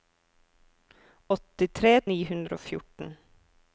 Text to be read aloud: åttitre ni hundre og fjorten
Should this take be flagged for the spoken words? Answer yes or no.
no